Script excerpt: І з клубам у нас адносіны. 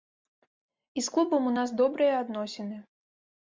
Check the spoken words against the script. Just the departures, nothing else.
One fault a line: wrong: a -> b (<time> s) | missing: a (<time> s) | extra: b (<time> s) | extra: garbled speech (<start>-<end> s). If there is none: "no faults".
extra: добрыя (1.8 s)